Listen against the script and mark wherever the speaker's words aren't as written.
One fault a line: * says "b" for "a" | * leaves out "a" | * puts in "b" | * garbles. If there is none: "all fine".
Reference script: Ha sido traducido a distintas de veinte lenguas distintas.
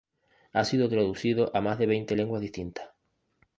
* says "más" for "distintas"